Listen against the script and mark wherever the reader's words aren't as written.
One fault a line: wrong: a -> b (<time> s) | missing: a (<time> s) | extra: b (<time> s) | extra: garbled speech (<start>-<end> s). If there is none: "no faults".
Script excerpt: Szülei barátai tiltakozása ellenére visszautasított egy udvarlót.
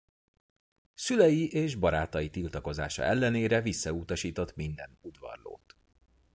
extra: és (1.5 s)
wrong: egy -> minden (4.5 s)